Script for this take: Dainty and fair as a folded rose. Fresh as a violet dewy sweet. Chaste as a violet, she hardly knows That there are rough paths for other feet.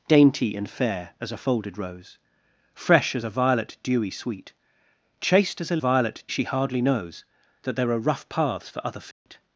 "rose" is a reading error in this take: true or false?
false